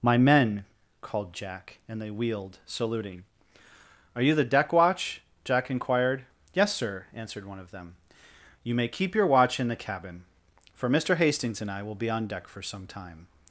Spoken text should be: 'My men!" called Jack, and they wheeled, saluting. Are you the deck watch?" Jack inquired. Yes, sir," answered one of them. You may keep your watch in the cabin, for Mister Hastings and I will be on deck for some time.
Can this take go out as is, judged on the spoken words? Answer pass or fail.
pass